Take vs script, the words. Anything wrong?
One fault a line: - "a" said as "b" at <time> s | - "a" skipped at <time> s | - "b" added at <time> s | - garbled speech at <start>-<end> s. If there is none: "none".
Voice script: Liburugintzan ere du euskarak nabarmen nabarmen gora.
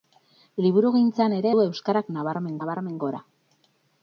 none